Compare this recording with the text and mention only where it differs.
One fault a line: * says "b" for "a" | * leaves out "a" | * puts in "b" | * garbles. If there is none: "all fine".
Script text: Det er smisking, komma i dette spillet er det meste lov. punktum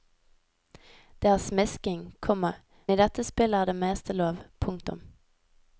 all fine